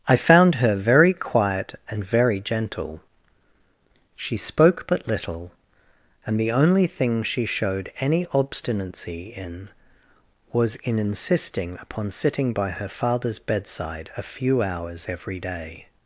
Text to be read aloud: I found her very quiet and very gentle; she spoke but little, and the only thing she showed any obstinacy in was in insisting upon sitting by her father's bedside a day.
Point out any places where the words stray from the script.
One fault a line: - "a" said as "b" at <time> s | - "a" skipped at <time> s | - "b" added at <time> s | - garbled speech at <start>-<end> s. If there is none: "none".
- "few hours every" added at 14.2 s